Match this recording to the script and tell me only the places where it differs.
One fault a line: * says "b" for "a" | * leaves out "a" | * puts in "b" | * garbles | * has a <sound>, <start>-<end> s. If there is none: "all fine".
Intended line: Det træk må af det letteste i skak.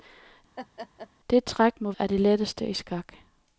* has a laugh, 0.6-1.1 s